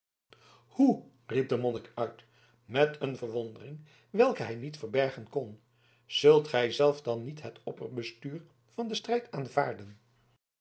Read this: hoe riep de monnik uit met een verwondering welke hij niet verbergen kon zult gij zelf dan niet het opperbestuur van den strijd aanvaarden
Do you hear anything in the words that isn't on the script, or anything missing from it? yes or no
no